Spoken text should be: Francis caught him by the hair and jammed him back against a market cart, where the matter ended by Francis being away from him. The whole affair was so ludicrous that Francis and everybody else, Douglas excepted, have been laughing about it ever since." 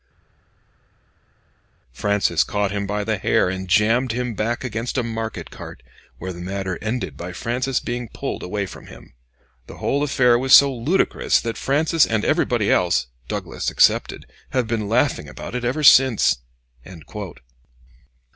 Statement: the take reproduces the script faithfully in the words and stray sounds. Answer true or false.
false